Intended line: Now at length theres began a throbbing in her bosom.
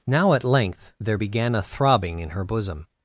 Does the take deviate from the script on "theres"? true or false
true